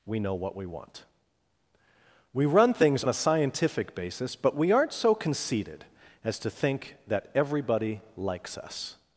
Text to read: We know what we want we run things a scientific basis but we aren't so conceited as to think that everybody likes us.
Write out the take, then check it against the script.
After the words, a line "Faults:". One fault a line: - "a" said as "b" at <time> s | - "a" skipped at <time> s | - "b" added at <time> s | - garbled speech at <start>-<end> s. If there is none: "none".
We know what we want we run things a scientific basis but we aren't so conceited as to think that everybody likes us.
Faults:
none